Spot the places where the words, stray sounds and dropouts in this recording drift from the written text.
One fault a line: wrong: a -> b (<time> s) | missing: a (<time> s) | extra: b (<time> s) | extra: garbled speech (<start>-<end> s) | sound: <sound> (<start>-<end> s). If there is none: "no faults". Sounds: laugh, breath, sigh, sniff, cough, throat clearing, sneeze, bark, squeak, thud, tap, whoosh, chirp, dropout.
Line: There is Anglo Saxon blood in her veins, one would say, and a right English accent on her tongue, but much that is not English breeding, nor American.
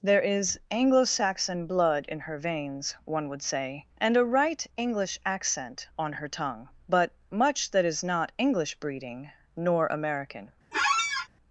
sound: squeak (10.7-11.3 s)